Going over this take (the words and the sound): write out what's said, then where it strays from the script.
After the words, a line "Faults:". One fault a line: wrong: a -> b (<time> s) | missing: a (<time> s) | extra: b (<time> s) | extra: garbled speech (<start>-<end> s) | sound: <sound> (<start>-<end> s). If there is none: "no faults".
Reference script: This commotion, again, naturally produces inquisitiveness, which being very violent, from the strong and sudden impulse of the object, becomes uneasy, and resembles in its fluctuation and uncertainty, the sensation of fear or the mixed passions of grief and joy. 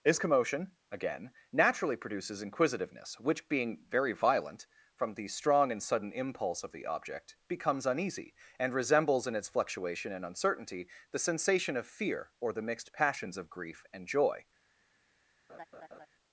This commotion, again, naturally produces inquisitiveness, which being very violent, from the strong and sudden impulse of the object, becomes uneasy, and resembles in its fluctuation and uncertainty, the sensation of fear or the mixed passions of grief and joy.
Faults:
sound: laugh (15.5-16.1 s)